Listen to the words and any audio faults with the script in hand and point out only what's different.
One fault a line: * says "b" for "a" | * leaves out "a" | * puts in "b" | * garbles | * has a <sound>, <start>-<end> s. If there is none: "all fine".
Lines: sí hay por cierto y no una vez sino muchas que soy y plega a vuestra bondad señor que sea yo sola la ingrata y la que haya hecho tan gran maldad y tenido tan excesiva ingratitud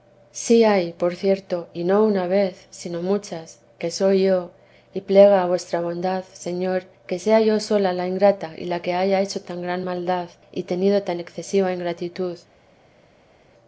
* puts in "yo"